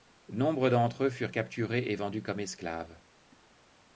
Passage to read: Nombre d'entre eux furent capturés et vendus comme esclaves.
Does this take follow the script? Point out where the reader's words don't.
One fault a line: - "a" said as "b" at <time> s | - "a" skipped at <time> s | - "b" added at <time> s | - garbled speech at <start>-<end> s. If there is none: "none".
none